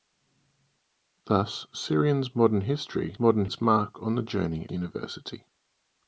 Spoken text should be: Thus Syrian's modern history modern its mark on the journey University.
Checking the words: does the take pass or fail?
pass